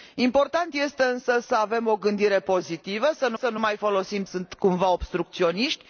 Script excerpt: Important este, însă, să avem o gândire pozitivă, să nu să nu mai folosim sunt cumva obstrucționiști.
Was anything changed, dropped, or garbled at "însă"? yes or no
no